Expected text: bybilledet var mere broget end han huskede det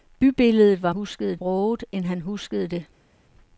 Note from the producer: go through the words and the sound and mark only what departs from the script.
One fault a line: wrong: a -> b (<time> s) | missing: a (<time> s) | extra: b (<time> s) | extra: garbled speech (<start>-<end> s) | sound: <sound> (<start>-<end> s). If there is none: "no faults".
wrong: mere -> huskede (0.9 s)